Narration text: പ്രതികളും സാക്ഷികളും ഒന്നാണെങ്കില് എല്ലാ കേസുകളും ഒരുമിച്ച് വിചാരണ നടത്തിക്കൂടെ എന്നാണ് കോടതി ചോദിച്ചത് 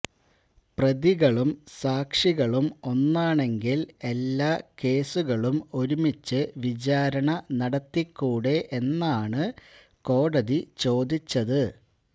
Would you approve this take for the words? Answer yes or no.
yes